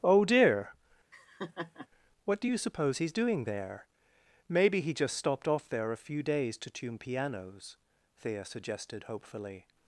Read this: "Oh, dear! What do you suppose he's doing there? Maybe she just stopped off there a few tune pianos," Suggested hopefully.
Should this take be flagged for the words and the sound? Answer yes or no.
yes